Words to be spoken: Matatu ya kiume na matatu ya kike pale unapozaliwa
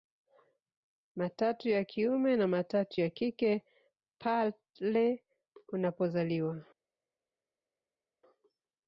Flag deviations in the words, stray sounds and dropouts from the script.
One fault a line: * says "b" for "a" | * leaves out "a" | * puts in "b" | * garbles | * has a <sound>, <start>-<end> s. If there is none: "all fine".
all fine